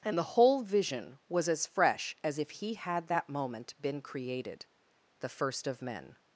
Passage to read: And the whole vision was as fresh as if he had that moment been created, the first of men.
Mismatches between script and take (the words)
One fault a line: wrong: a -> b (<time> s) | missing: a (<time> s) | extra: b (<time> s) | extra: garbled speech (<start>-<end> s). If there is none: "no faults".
no faults